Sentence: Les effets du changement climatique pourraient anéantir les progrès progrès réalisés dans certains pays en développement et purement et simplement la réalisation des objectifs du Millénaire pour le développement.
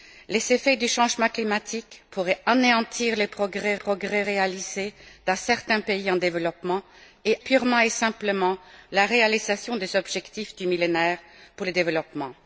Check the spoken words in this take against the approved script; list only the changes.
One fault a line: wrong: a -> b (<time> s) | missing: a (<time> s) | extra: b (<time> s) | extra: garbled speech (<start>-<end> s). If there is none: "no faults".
no faults